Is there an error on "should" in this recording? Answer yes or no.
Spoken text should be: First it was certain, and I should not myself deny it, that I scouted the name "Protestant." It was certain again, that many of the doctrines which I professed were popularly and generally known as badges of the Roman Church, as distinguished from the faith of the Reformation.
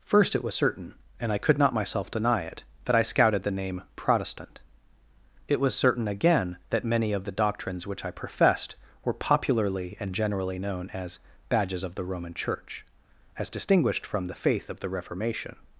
yes